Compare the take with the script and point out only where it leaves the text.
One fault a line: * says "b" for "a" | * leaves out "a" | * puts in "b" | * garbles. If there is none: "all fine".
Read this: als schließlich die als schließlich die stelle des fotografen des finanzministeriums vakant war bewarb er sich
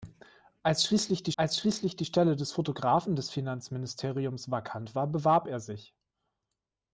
all fine